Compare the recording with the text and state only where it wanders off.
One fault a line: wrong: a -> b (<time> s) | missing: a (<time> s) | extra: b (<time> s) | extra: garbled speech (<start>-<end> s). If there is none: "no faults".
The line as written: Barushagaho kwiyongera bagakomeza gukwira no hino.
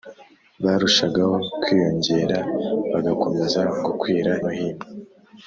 no faults